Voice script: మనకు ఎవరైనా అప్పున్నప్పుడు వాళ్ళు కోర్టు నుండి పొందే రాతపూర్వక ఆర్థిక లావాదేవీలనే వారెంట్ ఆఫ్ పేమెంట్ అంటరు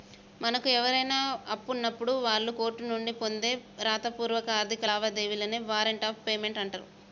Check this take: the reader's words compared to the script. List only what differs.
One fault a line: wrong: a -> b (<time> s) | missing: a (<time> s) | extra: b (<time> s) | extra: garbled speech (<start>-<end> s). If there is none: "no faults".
no faults